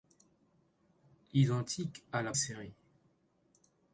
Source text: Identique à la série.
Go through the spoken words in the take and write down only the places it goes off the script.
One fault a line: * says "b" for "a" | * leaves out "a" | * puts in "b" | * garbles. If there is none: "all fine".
all fine